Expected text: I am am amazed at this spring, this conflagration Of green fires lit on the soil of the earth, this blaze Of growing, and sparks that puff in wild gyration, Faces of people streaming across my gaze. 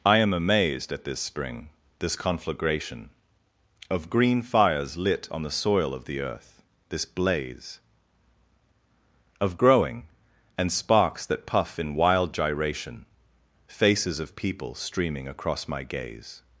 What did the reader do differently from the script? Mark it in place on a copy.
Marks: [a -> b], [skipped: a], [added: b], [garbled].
I am [skipped: am] amazed at this spring, this conflagration Of green fires lit on the soil of the earth, this blaze Of growing, and sparks that puff in wild gyration, Faces of people streaming across my gaze.